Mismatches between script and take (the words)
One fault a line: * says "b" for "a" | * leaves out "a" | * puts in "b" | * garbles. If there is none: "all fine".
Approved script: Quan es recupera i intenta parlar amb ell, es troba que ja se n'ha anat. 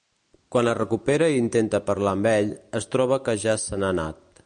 all fine